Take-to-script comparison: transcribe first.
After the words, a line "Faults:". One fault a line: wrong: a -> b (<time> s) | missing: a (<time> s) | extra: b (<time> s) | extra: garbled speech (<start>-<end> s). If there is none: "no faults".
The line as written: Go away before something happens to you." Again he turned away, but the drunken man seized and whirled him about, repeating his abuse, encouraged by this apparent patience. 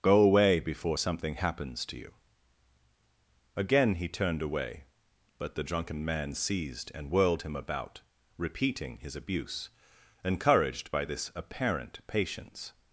Go away before something happens to you." Again he turned away, but the drunken man seized and whirled him about, repeating his abuse, encouraged by this apparent patience.
Faults:
no faults